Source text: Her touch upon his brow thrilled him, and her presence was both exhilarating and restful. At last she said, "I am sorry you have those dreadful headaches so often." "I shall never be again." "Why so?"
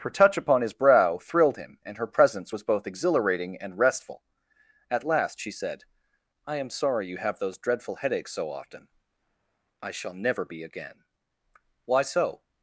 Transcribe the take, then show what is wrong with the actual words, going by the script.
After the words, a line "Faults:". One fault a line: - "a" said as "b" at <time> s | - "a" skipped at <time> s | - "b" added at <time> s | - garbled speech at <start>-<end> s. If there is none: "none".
Her touch upon his brow thrilled him, and her presence was both exhilarating and restful. At last she said, "I am sorry you have those dreadful headaches so often." "I shall never be again." "Why so?"
Faults:
none